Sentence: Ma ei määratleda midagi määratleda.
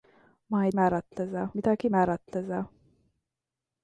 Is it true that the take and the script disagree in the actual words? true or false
false